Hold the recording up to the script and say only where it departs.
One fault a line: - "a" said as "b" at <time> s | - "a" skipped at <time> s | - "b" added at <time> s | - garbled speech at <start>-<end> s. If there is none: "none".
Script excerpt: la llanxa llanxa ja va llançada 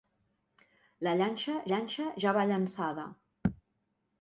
none